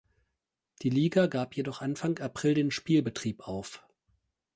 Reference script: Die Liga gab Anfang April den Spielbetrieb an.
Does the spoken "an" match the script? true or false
false